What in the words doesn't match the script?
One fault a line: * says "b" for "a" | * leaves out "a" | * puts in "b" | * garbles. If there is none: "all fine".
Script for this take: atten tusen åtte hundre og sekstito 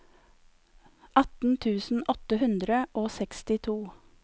all fine